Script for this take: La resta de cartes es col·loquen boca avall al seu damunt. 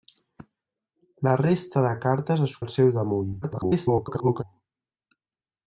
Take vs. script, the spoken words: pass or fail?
fail